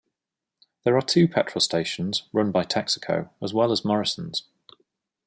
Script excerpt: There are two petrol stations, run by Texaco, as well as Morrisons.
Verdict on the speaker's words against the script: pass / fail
pass